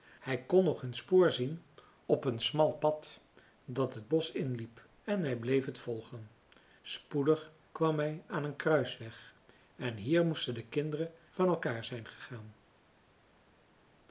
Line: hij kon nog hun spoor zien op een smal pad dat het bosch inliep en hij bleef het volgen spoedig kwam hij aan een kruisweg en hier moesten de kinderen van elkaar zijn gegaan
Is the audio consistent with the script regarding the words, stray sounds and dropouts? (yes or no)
yes